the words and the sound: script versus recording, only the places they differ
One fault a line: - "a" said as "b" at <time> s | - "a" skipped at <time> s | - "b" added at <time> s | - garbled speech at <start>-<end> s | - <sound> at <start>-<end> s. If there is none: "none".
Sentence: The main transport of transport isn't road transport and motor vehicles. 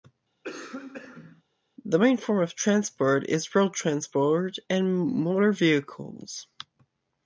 - cough at 0.4-1.4 s
- "transport" said as "form" at 2.2 s
- "isn't" said as "is" at 3.3 s